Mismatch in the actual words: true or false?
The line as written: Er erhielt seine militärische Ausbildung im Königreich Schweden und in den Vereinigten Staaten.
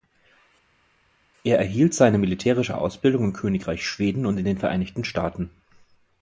false